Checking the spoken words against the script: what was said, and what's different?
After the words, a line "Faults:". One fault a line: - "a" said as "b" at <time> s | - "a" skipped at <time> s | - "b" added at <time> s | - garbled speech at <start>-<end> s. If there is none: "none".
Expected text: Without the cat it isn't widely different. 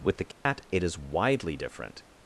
With the cat it is widely different.
Faults:
- "Without" said as "With" at 0.0 s
- "isn't" said as "is" at 0.8 s